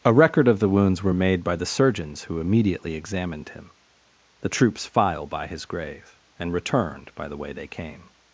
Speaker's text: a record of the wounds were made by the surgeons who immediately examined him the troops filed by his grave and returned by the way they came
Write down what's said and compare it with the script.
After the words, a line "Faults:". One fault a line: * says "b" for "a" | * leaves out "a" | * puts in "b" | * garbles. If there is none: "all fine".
a record of the wounds were made by the surgeons who immediately examined him the troops file by his grave and returned by the way they came
Faults:
* says "file" for "filed"